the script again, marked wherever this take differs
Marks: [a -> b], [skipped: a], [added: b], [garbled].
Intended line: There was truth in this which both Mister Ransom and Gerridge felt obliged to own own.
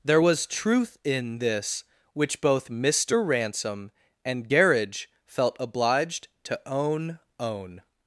There was truth in this which both Mister Ransom and Gerridge felt obliged to own own.